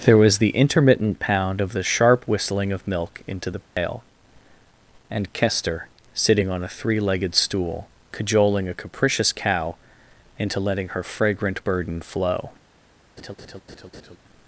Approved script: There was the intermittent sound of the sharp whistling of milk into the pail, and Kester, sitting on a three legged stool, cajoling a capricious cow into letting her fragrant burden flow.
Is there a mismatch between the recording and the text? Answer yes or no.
yes